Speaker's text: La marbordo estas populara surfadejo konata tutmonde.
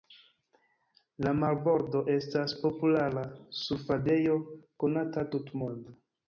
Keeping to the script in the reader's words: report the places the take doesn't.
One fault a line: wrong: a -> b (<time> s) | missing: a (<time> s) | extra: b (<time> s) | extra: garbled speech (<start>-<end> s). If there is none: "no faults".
no faults